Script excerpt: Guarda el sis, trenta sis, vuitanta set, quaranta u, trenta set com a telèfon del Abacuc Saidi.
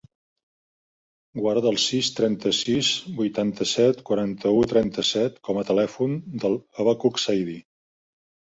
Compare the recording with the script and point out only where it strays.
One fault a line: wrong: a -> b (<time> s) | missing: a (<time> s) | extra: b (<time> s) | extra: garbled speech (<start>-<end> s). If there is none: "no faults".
no faults